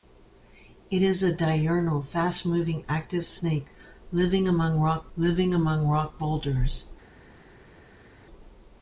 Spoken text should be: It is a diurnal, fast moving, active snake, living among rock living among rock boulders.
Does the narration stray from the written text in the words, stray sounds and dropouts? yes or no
no